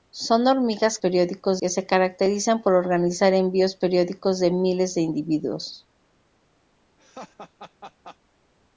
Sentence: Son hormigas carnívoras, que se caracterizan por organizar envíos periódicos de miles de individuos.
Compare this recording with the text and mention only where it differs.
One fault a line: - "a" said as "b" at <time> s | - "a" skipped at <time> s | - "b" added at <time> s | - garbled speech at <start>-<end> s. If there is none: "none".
- "carnívoras" said as "periódicos" at 1.0 s